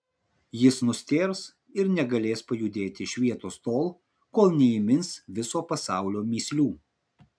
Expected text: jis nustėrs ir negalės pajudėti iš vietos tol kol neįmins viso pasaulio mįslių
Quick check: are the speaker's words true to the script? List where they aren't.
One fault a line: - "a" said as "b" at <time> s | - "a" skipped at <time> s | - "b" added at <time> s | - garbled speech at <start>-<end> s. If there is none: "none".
none